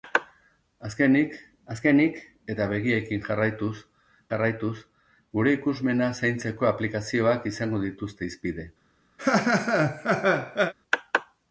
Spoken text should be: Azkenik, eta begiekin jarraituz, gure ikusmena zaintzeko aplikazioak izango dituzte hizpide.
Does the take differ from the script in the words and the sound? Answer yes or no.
yes